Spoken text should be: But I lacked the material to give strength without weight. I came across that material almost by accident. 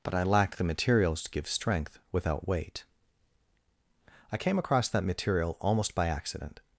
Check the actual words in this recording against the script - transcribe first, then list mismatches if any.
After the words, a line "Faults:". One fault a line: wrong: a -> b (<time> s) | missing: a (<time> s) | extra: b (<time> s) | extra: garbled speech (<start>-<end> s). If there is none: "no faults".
But I lacked the materials to give strength without weight. I came across that material almost by accident.
Faults:
wrong: material -> materials (0.6 s)